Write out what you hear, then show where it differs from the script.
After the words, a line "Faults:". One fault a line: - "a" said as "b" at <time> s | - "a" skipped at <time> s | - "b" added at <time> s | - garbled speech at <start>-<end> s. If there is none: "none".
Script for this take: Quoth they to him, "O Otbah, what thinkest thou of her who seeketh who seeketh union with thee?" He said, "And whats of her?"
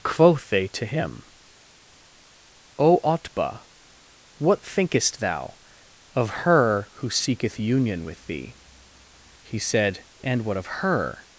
Quoth they to him, "O Otbah, what thinkest thou of her who seeketh union with thee?" He said, "And what of her?"
Faults:
- "who seeketh" skipped at 7.6 s
- "whats" said as "what" at 10.4 s